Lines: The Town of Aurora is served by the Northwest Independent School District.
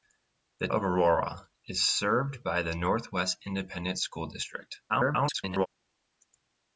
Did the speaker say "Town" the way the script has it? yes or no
no